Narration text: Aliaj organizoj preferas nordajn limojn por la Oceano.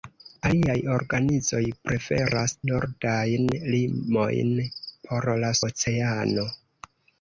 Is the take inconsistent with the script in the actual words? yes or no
no